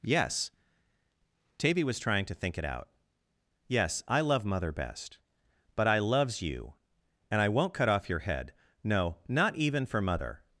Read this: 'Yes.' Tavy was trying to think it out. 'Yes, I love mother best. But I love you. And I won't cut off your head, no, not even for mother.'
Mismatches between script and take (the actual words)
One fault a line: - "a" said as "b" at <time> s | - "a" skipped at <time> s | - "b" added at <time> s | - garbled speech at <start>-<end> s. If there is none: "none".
- "love" said as "loves" at 6.0 s